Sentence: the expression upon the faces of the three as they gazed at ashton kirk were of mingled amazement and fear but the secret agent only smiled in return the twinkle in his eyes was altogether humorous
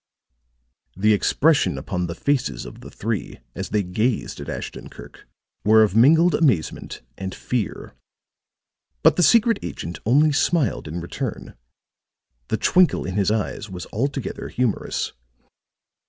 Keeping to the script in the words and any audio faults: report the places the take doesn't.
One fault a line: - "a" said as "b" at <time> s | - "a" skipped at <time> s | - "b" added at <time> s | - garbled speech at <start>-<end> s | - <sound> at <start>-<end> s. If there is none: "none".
none